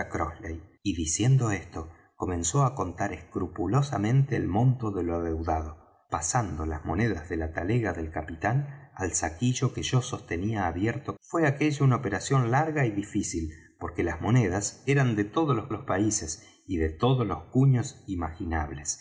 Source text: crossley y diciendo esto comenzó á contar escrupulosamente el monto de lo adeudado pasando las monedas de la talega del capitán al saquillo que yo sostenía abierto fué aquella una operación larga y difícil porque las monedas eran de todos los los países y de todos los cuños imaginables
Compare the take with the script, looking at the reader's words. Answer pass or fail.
pass